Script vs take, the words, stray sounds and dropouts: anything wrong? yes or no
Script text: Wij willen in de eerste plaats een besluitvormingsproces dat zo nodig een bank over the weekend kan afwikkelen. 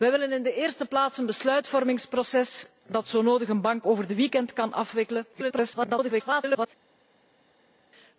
yes